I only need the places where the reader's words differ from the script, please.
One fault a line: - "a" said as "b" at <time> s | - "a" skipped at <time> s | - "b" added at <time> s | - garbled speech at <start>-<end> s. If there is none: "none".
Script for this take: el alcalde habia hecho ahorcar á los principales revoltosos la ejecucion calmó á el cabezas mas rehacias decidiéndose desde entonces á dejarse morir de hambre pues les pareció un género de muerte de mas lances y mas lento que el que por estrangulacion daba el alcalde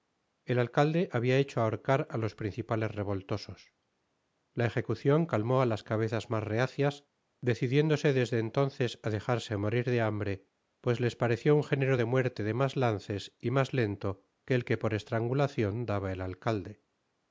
- "el" said as "las" at 5.7 s